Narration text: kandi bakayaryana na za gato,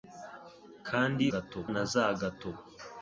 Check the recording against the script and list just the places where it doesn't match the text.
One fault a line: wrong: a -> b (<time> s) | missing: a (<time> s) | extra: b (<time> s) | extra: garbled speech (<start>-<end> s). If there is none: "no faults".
wrong: bakayaryana -> gato (1.3 s)